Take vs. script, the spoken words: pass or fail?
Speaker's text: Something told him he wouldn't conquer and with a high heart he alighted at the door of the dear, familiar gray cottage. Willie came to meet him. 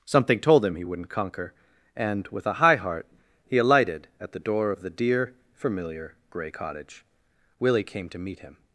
pass